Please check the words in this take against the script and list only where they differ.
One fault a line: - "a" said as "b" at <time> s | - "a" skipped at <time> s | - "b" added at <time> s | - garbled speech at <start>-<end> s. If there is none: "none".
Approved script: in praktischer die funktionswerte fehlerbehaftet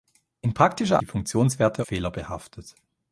none